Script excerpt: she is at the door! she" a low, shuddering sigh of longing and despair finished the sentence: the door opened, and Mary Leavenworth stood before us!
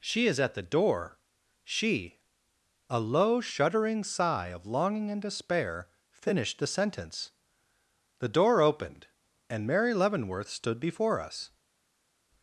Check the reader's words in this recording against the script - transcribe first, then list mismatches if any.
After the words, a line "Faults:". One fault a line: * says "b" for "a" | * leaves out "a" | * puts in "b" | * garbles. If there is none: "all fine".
she is at the door! she" a low, shuddering sigh of longing and despair finished the sentence: the door opened, and Mary Leavenworth stood before us!
Faults:
all fine